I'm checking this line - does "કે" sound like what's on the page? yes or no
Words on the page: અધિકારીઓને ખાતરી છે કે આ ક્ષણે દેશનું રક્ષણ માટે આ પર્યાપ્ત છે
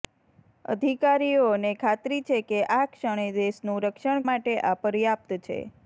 yes